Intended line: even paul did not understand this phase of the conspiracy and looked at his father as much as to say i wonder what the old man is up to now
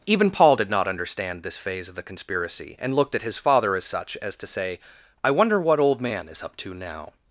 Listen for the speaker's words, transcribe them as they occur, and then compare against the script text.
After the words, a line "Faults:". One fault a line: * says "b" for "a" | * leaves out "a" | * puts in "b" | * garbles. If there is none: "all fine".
even paul did not understand this phase of the conspiracy and looked at his father as such as to say i wonder what old man is up to now
Faults:
* says "such" for "much"
* leaves out "the"